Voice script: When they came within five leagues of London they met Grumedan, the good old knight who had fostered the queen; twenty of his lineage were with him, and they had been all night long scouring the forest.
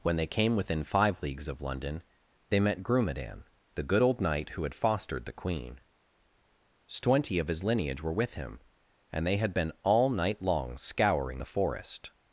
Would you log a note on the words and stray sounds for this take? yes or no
no